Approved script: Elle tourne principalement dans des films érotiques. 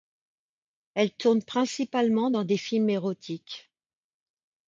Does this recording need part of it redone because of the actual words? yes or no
no